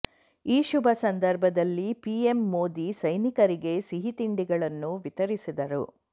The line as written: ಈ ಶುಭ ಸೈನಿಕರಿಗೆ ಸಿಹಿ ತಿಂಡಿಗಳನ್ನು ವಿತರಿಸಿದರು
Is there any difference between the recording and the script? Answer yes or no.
yes